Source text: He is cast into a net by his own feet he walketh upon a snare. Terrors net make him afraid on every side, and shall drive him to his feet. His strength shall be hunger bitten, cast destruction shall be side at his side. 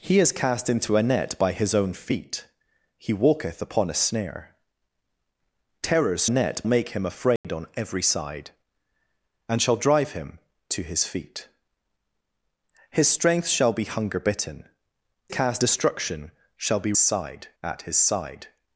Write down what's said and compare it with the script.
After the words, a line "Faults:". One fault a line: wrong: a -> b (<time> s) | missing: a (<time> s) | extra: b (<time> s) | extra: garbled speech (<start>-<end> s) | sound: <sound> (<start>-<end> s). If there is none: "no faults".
He is cast into a net by his own feet he walketh upon a snare. Terrors net make him afraid on every side, and shall drive him to his feet. His strength shall be hunger bitten, cast destruction shall be side at his side.
Faults:
sound: dropout (7.4-7.4 s)